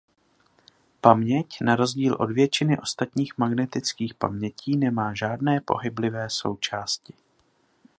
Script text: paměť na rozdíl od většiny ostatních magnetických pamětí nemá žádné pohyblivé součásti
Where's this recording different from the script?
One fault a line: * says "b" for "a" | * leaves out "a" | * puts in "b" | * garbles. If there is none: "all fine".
all fine